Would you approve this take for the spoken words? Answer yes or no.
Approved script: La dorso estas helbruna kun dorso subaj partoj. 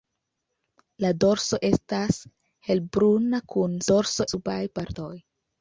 yes